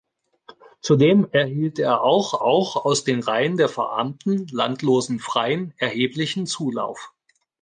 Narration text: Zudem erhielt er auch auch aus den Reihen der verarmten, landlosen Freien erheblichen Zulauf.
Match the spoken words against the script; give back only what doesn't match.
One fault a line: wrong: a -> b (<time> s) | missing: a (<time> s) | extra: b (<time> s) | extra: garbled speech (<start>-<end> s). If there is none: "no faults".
no faults